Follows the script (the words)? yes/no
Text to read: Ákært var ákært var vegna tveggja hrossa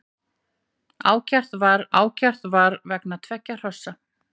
yes